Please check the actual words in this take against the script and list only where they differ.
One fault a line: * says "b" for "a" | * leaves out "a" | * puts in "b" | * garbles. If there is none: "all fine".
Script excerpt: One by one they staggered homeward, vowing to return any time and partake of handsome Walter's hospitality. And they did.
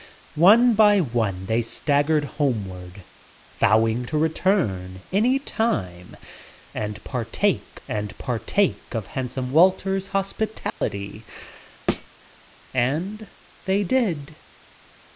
* puts in "and partake"